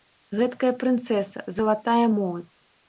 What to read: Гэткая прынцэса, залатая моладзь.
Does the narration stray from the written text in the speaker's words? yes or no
no